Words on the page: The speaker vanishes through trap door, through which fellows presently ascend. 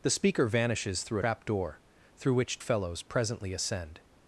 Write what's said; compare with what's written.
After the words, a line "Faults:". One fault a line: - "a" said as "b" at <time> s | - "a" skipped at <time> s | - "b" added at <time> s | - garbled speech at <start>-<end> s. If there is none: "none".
The speaker vanishes through trap door, through which fellows presently ascend.
Faults:
none